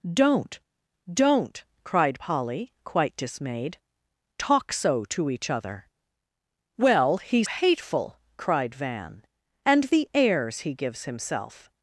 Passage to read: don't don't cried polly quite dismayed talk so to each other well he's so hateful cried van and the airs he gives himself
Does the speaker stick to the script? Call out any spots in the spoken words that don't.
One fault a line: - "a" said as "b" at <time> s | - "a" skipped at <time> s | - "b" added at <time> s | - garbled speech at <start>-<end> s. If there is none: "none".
- "so" skipped at 7.5 s